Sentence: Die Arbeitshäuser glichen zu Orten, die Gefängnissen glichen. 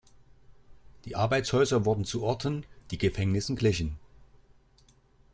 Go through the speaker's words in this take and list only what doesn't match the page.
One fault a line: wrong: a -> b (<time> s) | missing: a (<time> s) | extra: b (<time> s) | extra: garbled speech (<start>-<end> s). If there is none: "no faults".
wrong: glichen -> wurden (1.8 s)